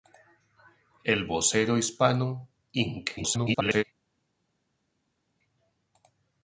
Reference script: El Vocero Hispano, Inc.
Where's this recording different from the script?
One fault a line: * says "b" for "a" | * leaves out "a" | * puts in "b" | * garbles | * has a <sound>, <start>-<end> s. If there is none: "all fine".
* garbles